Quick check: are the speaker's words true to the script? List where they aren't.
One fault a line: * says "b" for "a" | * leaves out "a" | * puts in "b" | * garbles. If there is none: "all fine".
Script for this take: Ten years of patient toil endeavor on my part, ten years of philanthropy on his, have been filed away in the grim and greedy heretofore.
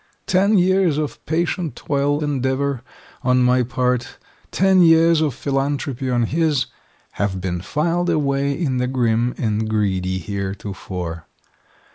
all fine